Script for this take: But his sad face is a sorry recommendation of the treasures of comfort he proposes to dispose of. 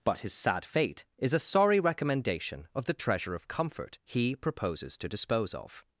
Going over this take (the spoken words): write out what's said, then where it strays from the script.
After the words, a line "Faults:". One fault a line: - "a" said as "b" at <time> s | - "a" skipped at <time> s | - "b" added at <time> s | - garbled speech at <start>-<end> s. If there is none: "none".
But his sad fate is a sorry recommendation of the treasure of comfort he proposes to dispose of.
Faults:
- "face" said as "fate" at 0.7 s
- "treasures" said as "treasure" at 2.9 s